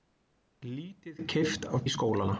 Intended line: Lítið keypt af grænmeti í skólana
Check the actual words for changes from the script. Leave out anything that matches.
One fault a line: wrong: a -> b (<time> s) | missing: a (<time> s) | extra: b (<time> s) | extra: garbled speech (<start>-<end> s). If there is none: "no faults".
missing: grænmeti (1.9 s)